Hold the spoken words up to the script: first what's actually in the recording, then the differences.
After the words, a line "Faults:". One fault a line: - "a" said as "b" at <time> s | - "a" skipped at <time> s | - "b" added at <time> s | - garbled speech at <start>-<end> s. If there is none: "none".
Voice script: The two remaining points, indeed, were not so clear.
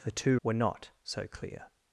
The two were not so clear.
Faults:
- "remaining points indeed" skipped at 0.4 s